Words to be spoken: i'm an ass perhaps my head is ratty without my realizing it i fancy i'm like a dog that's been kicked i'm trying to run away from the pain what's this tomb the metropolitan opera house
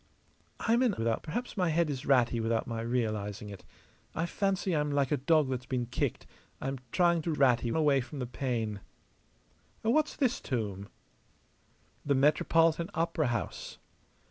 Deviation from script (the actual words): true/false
true